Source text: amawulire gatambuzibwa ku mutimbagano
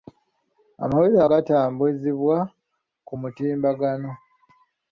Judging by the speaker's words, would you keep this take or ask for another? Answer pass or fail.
pass